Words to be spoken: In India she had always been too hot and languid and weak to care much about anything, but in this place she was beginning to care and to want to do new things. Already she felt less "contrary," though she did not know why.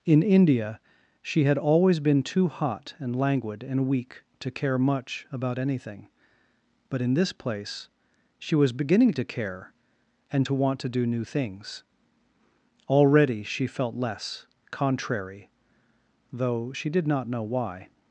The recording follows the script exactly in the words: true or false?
true